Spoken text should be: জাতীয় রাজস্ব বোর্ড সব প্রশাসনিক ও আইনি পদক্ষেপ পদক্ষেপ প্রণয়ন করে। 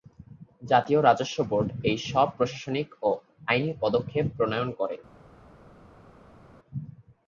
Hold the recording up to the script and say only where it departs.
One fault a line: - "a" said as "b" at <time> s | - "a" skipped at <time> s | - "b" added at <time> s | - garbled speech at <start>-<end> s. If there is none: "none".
- "এই" added at 1.8 s
- "পদক্ষেপ" skipped at 4.2 s